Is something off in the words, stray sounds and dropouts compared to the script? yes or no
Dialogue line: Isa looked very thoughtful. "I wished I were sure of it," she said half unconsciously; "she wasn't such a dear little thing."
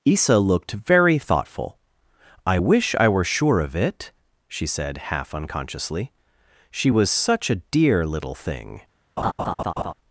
yes